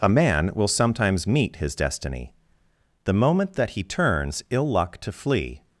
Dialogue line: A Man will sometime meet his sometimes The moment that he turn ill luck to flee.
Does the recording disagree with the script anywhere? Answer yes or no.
yes